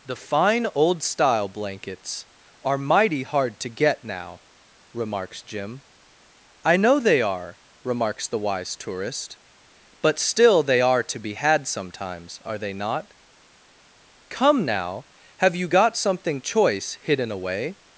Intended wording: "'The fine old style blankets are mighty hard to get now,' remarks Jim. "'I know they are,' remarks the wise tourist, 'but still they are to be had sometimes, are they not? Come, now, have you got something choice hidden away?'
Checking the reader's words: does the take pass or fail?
pass